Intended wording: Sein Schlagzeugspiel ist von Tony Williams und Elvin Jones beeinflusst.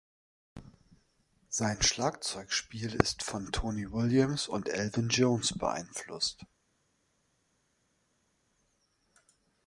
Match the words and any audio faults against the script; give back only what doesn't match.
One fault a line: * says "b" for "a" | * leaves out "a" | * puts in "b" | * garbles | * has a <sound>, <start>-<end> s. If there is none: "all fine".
all fine